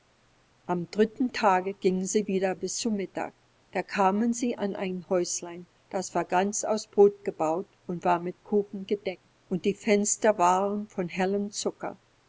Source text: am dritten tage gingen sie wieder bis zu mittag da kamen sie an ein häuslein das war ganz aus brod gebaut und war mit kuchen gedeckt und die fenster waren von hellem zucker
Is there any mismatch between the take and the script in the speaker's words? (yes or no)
no